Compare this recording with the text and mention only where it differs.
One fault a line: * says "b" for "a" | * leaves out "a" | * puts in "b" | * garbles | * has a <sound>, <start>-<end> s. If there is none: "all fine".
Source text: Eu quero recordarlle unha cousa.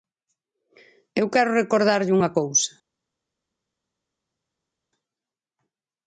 all fine